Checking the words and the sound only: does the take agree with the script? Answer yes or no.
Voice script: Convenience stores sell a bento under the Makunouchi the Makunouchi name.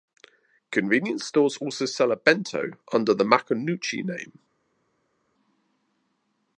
no